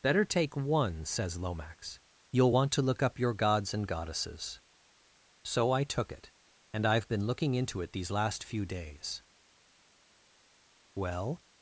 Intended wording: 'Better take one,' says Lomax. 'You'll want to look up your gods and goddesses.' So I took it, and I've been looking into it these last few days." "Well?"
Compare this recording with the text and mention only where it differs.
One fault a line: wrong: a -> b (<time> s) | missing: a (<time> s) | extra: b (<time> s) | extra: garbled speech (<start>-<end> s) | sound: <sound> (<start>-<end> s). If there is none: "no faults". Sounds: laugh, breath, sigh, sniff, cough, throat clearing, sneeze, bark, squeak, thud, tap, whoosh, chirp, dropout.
no faults